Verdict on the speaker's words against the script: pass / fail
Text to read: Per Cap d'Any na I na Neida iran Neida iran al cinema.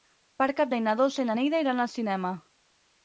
fail